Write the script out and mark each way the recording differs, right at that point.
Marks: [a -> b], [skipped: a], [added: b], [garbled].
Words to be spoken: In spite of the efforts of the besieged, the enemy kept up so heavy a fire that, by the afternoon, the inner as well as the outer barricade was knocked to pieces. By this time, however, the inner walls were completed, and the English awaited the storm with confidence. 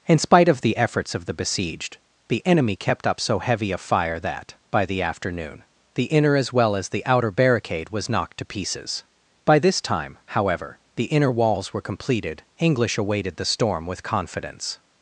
In spite of the efforts of the besieged, the enemy kept up so heavy a fire that, by the afternoon, the inner as well as the outer barricade was knocked to pieces. By this time, however, the inner walls were completed, [skipped: and the] English awaited the storm with confidence.